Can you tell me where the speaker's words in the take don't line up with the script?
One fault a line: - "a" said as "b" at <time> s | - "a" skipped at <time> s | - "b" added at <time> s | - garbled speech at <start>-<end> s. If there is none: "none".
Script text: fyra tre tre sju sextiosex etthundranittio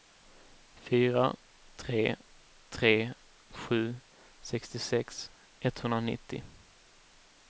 none